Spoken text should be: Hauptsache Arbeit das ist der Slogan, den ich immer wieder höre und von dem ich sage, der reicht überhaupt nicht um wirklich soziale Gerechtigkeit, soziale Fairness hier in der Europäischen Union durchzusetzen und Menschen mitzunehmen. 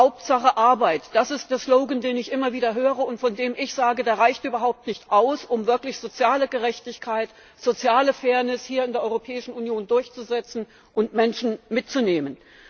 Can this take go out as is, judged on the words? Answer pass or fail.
fail